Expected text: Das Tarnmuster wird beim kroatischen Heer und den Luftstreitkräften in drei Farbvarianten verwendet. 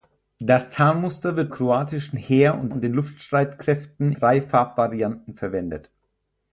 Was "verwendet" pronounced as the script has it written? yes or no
yes